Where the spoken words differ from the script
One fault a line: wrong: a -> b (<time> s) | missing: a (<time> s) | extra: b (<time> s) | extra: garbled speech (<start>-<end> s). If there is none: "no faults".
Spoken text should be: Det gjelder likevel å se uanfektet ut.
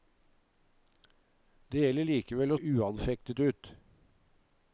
missing: se (2.6 s)